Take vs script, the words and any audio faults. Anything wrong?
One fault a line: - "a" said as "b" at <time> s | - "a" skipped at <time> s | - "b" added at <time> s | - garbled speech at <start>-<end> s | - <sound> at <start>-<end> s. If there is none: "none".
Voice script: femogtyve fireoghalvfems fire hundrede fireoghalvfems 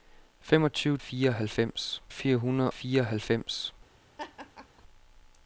- laugh at 4.2-4.8 s